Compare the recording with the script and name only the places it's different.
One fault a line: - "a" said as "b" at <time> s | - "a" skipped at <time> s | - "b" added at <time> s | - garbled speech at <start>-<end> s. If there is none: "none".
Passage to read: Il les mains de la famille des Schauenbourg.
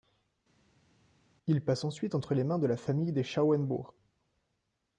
- "passe ensuite entre" added at 1.6 s